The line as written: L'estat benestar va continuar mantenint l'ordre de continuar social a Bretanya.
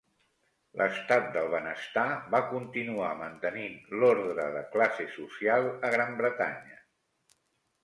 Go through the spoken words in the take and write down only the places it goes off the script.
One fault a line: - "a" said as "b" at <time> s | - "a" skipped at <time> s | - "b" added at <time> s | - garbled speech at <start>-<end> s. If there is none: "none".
- "del" added at 1.4 s
- "continuar" said as "classe" at 4.7 s
- "Gran" added at 6.0 s